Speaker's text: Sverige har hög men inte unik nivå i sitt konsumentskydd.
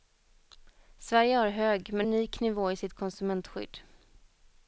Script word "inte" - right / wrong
wrong